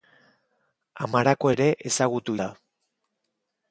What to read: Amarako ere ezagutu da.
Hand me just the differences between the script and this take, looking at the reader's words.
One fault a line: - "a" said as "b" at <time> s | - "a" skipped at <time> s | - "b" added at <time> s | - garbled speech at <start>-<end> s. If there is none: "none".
none